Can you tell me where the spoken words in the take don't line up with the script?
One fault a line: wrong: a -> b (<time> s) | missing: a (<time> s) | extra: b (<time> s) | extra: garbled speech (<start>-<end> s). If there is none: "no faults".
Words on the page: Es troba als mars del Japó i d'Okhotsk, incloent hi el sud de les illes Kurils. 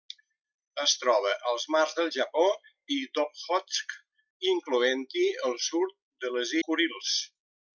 missing: illes (6.6 s)